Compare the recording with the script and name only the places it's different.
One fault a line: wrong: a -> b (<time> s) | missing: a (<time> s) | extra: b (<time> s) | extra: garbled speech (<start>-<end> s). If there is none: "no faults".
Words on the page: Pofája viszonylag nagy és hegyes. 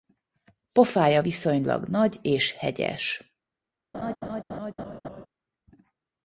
no faults